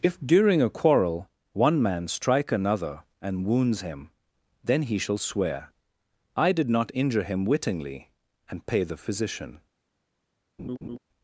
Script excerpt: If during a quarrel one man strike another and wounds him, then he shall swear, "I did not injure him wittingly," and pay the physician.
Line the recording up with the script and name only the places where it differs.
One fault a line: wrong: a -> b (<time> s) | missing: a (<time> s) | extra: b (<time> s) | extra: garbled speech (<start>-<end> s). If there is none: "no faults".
no faults